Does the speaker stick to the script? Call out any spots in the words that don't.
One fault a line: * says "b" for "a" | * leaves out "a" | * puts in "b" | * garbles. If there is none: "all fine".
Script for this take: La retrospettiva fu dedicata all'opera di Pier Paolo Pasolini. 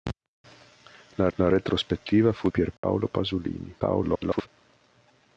* puts in "la"
* leaves out "dedicata all'opera di"
* garbles